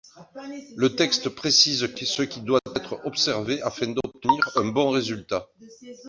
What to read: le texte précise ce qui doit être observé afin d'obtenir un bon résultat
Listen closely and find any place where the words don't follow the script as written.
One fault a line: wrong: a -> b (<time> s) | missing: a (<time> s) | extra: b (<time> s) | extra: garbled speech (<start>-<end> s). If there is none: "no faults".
no faults